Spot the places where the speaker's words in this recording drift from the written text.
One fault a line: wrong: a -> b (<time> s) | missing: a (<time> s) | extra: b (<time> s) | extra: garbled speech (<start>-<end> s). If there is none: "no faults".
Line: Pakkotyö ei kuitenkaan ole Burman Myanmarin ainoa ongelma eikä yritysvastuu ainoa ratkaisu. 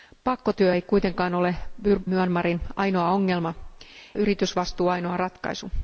missing: Burman (1.5 s)
missing: eikä (3.5 s)